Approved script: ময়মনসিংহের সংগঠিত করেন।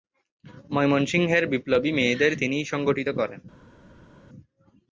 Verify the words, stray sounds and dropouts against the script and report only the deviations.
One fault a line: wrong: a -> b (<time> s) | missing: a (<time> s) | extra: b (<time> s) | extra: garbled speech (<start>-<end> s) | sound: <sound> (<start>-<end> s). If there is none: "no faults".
extra: বিপ্লবী মেয়েদের তিনিই (1.5 s)